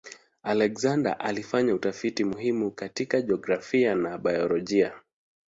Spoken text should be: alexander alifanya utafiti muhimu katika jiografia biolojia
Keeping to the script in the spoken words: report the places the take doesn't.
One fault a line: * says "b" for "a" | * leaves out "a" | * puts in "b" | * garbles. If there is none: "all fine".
* puts in "na"